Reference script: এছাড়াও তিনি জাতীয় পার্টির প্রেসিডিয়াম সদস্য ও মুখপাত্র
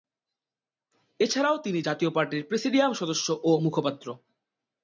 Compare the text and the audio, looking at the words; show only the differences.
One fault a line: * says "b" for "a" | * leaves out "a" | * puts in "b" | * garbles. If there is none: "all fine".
all fine